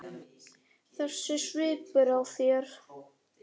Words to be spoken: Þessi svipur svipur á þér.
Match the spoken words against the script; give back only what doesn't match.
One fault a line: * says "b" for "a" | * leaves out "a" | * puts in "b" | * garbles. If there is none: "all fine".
* leaves out "svipur"